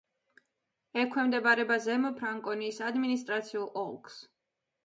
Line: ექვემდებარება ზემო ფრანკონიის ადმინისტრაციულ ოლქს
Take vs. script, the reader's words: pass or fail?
pass